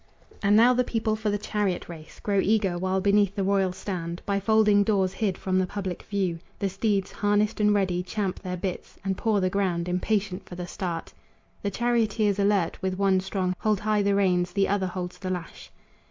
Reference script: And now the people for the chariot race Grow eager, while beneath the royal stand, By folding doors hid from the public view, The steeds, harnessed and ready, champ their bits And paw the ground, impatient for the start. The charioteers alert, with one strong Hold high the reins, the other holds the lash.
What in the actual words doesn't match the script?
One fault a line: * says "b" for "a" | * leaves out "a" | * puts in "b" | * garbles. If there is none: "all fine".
all fine